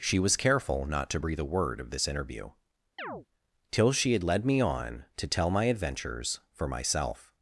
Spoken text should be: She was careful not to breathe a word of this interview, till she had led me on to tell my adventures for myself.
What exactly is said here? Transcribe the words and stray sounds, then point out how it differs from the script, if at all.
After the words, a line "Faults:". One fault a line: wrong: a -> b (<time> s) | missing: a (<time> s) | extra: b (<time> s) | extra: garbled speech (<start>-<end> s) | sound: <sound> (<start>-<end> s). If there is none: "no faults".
She was careful not to breathe a word of this interview, till she had led me on to tell my adventures for myself.
Faults:
sound: chirp (3.0-3.3 s)